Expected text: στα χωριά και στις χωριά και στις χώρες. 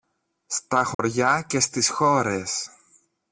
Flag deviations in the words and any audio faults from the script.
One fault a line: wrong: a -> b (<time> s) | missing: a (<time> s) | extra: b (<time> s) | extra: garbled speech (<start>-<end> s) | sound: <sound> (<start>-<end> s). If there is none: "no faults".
sound: dropout (0.9-1.0 s)
missing: χωριά και στις (1.9 s)